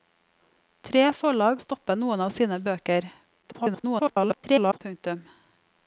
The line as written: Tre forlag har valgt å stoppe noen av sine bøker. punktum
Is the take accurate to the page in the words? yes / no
no